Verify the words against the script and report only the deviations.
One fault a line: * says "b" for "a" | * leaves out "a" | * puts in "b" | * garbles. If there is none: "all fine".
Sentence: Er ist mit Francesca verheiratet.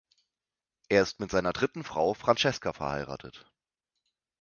* puts in "seiner dritten Frau"